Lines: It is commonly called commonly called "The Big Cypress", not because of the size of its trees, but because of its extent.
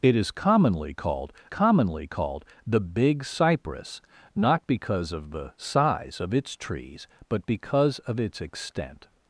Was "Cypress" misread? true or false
false